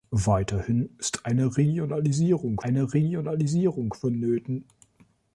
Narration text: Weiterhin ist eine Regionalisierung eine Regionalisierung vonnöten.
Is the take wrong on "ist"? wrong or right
right